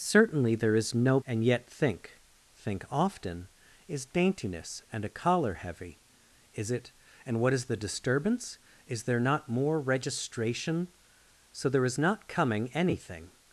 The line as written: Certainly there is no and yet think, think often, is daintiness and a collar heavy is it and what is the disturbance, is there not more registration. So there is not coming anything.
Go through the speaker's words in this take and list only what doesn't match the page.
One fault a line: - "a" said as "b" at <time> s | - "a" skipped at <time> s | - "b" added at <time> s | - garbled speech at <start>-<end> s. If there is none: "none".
none